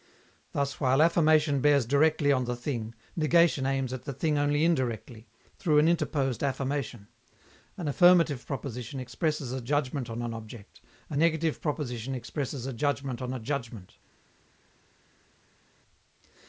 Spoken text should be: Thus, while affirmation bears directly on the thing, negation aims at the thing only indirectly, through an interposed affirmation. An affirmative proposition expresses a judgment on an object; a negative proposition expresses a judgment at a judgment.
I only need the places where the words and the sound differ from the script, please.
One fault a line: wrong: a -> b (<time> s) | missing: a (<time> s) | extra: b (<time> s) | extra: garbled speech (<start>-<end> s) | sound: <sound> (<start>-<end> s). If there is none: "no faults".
wrong: at -> on (13.2 s)